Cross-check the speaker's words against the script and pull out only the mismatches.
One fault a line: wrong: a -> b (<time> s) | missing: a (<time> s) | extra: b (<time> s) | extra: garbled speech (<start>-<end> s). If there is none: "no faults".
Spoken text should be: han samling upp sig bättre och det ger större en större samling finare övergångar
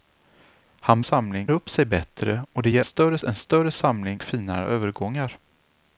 no faults